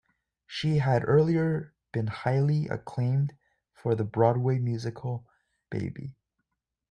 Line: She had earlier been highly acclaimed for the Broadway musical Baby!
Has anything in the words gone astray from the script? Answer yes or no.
no